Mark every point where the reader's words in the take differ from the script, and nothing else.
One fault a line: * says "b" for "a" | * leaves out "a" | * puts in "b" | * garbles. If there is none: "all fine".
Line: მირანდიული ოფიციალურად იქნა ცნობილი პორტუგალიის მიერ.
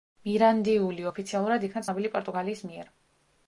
all fine